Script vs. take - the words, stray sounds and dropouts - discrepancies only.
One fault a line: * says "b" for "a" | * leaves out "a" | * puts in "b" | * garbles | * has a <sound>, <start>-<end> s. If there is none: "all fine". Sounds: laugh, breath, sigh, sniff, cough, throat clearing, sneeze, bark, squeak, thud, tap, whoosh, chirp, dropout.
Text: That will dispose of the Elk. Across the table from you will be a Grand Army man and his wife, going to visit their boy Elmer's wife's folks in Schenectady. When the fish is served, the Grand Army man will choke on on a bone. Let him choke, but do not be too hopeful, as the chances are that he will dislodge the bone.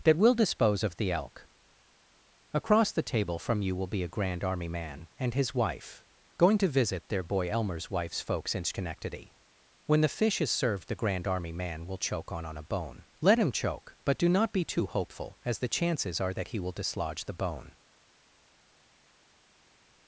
all fine